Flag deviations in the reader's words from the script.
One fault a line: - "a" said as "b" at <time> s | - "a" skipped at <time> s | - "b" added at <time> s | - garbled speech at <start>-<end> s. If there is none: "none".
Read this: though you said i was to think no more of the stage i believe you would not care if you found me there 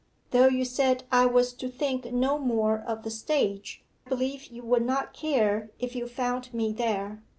- "i" skipped at 3.8 s